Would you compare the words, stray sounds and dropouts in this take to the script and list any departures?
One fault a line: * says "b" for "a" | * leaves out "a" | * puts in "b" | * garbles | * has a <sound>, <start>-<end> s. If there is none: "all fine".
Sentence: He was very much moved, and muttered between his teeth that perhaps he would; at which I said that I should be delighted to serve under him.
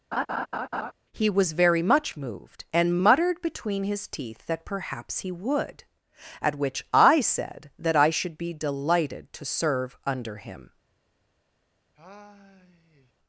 * has a laugh, 0.1-0.9 s
* has a sigh, 12.0-13.1 s